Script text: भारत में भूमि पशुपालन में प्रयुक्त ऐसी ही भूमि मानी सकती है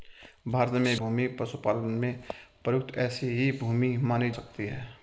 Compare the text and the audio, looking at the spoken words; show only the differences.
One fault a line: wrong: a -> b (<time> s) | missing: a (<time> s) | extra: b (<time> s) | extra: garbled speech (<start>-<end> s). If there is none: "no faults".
no faults